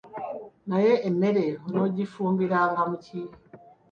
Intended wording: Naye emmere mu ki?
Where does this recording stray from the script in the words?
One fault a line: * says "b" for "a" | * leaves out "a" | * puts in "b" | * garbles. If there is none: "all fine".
* puts in "onoogifumbiranga"